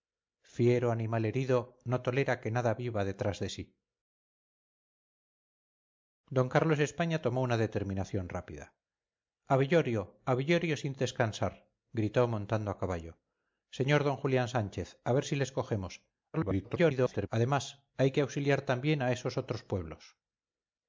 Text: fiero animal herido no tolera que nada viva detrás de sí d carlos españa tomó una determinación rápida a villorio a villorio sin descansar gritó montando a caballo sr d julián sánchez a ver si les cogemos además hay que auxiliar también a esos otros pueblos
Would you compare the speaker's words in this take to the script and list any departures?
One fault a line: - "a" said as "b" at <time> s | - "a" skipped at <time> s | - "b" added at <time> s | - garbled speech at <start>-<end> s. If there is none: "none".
- garbled speech at 16.3-17.3 s